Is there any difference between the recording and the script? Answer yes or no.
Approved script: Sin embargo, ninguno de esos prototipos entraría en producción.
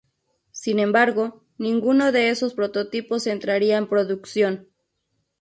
no